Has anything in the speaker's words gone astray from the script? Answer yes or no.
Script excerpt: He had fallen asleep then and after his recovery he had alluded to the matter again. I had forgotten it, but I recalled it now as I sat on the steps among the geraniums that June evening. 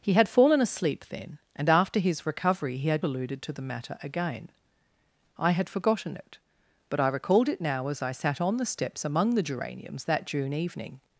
no